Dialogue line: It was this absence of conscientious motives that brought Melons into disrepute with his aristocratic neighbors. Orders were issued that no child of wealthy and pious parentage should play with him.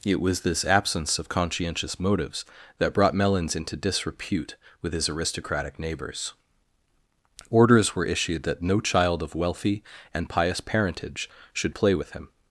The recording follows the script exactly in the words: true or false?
true